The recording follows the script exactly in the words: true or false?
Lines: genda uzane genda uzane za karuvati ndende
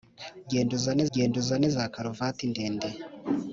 true